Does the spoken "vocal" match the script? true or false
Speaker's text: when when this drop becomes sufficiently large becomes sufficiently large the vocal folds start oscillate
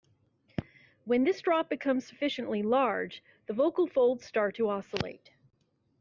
true